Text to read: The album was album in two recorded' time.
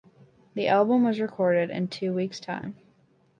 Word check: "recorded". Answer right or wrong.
wrong